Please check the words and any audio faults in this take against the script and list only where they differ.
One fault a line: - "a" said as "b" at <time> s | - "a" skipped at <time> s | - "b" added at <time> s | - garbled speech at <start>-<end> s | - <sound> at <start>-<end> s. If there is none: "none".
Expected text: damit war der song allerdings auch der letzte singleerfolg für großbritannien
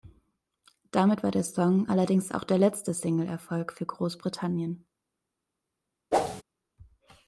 - whoosh at 6.1-6.4 s